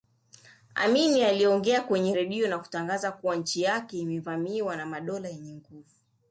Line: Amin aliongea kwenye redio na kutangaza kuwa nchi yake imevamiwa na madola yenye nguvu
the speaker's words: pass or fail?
pass